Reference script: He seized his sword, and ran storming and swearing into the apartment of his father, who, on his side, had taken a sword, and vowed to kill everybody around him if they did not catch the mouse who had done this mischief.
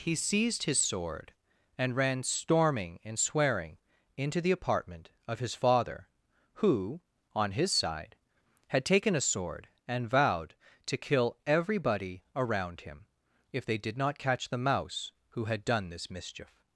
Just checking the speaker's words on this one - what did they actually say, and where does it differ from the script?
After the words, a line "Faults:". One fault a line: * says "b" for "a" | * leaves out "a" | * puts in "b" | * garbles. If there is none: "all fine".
He seized his sword, and ran storming and swearing into the apartment of his father, who, on his side, had taken a sword, and vowed to kill everybody around him if they did not catch the mouse who had done this mischief.
Faults:
all fine